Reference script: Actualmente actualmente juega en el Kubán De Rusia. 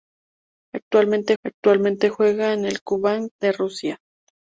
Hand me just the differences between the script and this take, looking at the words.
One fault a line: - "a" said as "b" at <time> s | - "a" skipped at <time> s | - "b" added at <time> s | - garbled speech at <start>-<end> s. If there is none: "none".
none